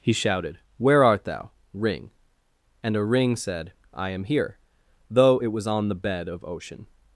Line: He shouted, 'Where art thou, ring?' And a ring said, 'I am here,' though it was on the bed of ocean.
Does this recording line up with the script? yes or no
yes